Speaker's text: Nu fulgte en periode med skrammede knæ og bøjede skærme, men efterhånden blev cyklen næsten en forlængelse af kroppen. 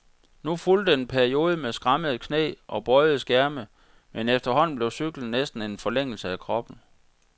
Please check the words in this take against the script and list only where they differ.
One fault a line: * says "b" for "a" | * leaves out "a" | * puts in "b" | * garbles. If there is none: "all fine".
all fine